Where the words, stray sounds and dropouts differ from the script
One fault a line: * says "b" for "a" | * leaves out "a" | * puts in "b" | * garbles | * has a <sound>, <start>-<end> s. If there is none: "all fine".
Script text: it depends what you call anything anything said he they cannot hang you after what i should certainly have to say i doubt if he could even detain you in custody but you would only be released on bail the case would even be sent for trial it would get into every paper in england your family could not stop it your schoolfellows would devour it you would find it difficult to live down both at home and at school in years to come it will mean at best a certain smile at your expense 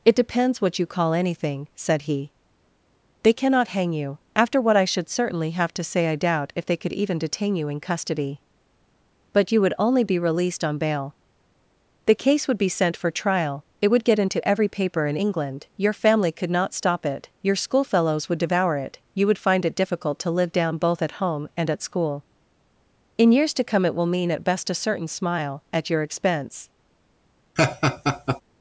* leaves out "anything"
* says "they" for "he"
* leaves out "even"
* has a laugh, 27.6-28.4 s